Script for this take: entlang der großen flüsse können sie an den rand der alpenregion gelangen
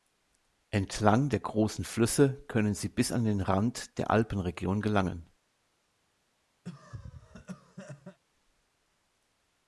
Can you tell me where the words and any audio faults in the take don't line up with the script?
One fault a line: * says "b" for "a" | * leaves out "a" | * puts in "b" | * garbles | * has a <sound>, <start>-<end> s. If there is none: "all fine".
* puts in "bis"
* has a cough, 6.6-8.2 s